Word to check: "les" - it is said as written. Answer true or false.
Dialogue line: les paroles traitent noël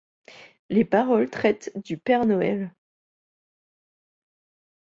true